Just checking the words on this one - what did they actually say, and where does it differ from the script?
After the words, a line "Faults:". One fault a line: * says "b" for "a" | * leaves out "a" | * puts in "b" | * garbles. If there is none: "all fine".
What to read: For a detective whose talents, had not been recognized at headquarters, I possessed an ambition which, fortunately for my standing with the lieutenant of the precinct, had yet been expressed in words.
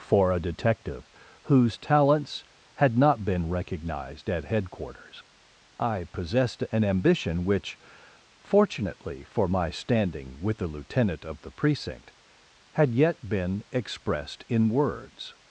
For a detective whose talents, had not been recognized at headquarters, I possessed an ambition which, fortunately for my standing with the lieutenant of the precinct, had yet been expressed in words.
Faults:
all fine